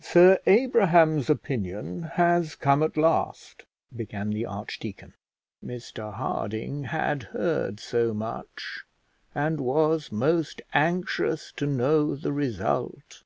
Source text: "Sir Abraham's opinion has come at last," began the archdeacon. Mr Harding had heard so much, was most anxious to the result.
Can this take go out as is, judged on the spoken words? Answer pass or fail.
fail